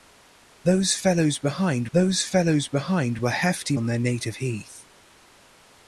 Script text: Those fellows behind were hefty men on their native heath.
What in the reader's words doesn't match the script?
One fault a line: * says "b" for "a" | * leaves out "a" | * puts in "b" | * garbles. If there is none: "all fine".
* puts in "those fellows behind"
* leaves out "men"